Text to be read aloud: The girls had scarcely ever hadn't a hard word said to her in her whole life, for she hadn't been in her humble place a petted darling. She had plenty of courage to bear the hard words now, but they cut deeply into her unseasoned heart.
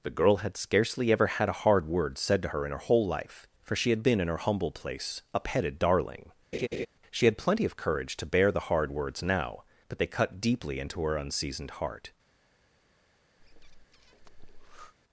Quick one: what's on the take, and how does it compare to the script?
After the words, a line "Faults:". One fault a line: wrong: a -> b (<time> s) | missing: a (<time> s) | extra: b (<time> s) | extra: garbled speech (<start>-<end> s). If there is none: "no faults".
The girl had scarcely ever had a hard word said to her in her whole life, for she had been in her humble place a petted darling. She had plenty of courage to bear the hard words now, but they cut deeply into her unseasoned heart.
Faults:
wrong: girls -> girl (0.1 s)
wrong: hadn't -> had (1.3 s)
wrong: hadn't -> had (3.9 s)